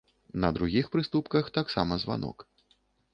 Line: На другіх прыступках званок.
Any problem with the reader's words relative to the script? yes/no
yes